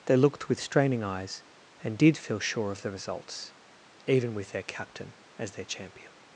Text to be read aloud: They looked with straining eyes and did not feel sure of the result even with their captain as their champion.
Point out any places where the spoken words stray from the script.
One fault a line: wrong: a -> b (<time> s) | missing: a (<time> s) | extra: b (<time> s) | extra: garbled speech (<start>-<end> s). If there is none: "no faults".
missing: not (2.2 s)
wrong: result -> results (2.9 s)